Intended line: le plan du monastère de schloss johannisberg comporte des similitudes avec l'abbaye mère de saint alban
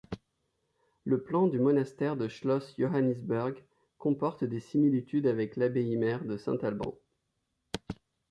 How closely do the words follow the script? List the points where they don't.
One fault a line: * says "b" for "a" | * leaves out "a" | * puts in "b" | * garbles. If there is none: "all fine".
all fine